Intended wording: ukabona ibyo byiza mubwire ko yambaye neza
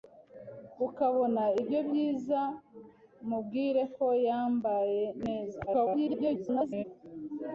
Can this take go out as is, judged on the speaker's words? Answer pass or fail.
fail